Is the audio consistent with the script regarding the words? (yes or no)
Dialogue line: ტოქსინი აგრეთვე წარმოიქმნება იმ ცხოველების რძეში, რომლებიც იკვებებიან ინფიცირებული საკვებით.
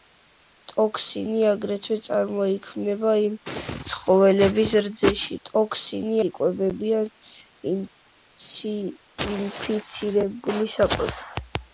no